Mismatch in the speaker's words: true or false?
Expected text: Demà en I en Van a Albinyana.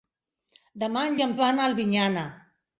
false